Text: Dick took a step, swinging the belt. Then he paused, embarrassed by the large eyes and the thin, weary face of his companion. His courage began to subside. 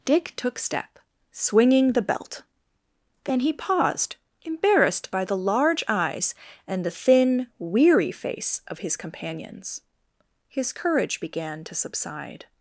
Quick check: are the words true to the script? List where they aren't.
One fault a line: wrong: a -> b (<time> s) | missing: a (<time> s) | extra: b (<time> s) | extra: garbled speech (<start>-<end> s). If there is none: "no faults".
missing: a (0.6 s)
wrong: companion -> companions (9.0 s)